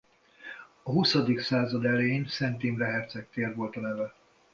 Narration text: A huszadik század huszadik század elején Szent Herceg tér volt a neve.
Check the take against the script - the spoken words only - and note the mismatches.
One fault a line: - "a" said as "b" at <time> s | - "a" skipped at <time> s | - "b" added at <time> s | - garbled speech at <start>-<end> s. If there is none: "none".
- "huszadik század" skipped at 1.9 s
- "Imre" added at 2.6 s